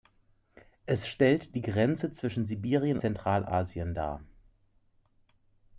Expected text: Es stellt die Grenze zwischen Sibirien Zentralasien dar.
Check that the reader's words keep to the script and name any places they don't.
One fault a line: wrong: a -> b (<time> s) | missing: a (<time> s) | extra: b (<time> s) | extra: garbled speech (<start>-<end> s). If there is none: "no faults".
no faults